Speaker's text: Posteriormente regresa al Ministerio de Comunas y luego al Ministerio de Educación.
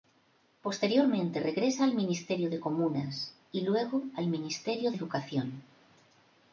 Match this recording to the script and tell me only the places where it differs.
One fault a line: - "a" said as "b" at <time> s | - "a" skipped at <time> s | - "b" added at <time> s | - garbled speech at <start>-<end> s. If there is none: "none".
- "de" skipped at 4.9 s